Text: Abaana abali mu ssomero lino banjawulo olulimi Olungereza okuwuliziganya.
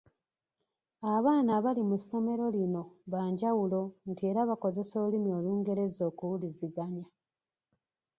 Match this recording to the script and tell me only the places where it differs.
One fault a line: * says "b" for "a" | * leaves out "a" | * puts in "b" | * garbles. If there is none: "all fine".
* puts in "nti era bakozesa"